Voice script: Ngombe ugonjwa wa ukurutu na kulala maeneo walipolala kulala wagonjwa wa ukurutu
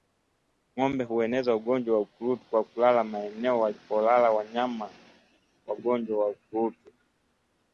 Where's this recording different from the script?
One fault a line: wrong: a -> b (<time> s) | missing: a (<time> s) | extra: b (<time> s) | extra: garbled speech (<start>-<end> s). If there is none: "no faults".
extra: hueneza (1.0 s)
wrong: na -> kwa (2.5 s)
wrong: kulala -> wanyama (4.3 s)